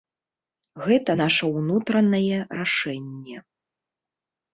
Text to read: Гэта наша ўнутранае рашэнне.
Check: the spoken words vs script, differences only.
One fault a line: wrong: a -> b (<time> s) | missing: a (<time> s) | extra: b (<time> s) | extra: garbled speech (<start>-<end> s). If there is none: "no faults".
no faults